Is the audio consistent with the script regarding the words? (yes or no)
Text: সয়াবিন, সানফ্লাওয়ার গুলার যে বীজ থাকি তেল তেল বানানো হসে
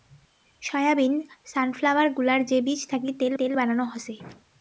yes